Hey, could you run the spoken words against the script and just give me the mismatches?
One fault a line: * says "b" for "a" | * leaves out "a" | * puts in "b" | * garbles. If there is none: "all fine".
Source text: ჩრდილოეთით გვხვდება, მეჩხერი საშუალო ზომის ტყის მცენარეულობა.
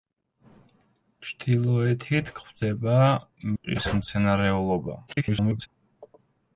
* leaves out "მეჩხერი საშუალო ზომის"
* garbles